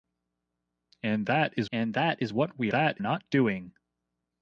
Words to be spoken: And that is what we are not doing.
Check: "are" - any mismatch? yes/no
yes